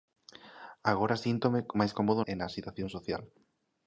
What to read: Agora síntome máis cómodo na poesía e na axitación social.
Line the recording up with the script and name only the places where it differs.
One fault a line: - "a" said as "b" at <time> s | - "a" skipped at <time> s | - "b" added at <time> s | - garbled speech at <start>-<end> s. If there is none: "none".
- "na poesía" skipped at 2.2 s